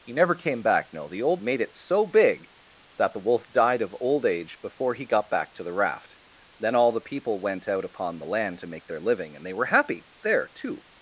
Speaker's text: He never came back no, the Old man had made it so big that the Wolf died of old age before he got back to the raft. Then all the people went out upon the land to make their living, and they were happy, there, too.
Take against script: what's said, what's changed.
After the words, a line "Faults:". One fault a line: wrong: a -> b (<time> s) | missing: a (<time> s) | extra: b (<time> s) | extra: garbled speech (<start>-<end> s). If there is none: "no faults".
He never came back no, the Old made it so big that the Wolf died of old age before he got back to the raft. Then all the people went out upon the land to make their living, and they were happy, there, too.
Faults:
missing: man had (1.4 s)